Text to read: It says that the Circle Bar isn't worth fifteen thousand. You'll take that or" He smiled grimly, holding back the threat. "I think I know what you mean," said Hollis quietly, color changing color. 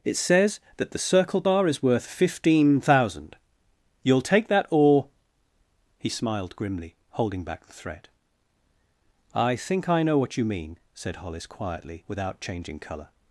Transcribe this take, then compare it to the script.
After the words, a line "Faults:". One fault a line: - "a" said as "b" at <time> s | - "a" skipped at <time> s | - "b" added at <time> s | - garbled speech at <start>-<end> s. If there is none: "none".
It says that the Circle Bar is worth fifteen thousand. You'll take that or" He smiled grimly, holding back the threat. "I think I know what you mean," said Hollis quietly, without changing color.
Faults:
- "isn't" said as "is" at 1.7 s
- "color" said as "without" at 12.1 s